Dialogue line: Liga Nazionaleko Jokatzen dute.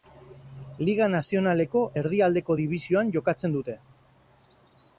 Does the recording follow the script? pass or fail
fail